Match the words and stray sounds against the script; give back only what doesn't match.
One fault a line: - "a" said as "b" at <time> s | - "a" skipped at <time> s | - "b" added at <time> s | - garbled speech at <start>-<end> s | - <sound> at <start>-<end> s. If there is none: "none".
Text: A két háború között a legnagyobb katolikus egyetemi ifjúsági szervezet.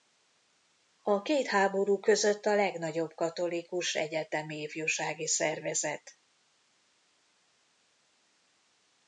none